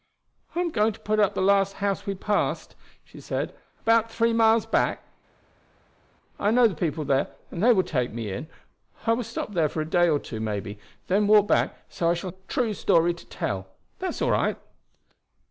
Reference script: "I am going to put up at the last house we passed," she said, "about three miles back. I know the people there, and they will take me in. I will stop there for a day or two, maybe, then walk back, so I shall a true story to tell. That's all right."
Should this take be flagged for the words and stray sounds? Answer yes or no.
no